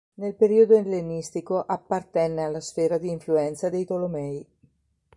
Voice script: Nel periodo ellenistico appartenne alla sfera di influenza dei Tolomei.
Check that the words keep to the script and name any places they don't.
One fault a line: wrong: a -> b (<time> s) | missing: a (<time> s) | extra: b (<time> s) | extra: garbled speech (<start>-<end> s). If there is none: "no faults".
no faults